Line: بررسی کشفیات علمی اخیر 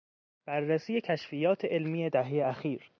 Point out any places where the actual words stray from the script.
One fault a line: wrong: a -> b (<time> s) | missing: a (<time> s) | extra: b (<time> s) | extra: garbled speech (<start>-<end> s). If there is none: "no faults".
extra: دههی (2.1 s)